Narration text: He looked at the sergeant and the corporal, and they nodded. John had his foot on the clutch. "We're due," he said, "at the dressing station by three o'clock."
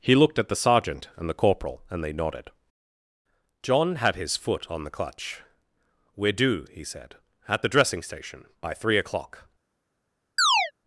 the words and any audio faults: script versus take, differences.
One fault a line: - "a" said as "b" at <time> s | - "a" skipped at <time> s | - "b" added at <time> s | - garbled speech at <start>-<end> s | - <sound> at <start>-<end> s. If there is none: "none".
- chirp at 10.4-10.7 s